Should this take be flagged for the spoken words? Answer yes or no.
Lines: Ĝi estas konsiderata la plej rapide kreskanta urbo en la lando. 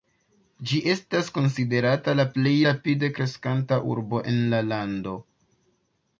no